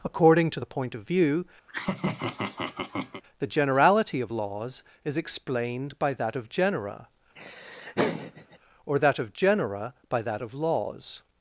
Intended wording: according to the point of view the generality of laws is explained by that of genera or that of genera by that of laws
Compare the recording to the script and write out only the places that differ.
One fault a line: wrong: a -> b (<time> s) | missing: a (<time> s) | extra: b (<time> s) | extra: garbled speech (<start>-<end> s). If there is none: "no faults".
no faults